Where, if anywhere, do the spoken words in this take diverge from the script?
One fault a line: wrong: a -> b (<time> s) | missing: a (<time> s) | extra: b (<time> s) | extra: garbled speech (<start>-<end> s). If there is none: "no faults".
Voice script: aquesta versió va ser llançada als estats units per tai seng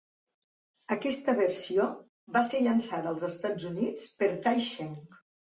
no faults